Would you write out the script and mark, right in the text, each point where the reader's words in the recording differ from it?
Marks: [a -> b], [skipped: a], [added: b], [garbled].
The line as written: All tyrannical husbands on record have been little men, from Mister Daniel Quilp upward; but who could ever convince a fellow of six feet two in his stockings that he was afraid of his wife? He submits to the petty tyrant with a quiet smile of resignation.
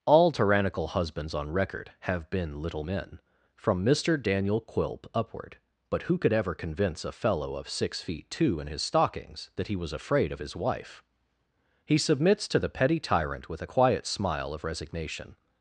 All tyrannical husbands on record have been little men, from Mister Daniel Quilp upward; but who could ever convince a fellow of six feet two in his stockings that he was afraid of his wife? He submits to the petty tyrant with a quiet smile of resignation.